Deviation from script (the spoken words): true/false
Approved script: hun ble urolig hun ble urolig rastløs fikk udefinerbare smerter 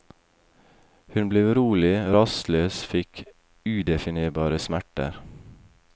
true